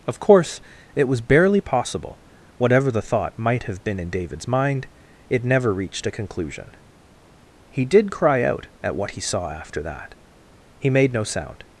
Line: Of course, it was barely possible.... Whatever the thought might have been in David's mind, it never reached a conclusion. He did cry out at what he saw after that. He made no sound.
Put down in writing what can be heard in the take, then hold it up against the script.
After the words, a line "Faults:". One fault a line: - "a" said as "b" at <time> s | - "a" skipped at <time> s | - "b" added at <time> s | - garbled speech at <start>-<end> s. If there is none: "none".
Of course, it was barely possible.... Whatever the thought might have been in David's mind, it never reached a conclusion. He did cry out at what he saw after that. He made no sound.
Faults:
none